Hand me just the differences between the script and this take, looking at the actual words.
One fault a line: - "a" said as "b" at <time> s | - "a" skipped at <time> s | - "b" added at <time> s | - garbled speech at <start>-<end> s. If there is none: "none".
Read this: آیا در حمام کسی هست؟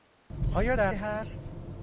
- "حمام کسی" skipped at 0.9 s